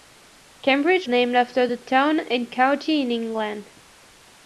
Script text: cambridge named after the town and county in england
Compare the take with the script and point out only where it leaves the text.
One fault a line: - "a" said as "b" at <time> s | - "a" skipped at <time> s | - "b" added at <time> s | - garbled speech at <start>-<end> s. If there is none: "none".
none